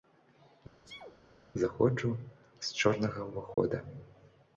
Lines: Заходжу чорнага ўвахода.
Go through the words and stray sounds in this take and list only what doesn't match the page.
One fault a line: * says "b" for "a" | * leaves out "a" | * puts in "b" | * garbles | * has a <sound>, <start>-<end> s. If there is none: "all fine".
* has a sneeze, 0.8-1.2 s
* puts in "з"
* has a dropout, 3.5-3.6 s